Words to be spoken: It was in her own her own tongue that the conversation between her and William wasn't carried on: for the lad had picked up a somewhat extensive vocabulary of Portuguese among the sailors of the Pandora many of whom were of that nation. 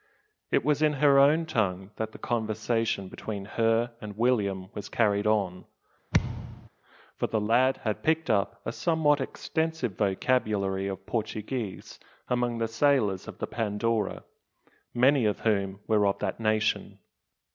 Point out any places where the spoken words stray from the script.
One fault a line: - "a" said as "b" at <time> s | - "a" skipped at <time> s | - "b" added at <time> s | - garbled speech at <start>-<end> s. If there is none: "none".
- "her own" skipped at 1.4 s
- "wasn't" said as "was" at 4.7 s